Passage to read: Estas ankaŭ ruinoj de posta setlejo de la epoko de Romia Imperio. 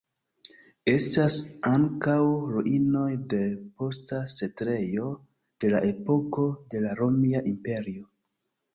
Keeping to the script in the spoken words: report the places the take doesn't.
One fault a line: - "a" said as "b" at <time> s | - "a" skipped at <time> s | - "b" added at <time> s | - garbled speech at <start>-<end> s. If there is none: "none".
- "la" added at 6.9 s